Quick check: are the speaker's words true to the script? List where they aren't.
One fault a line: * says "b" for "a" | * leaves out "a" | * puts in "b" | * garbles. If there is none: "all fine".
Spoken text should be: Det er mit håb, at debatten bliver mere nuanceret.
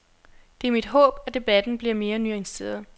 all fine